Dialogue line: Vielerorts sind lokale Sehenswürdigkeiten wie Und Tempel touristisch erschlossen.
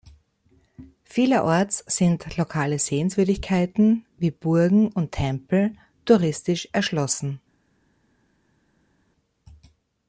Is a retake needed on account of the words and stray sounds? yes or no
yes